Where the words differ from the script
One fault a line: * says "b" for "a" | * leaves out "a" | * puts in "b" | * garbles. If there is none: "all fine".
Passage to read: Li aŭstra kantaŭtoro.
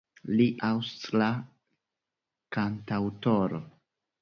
all fine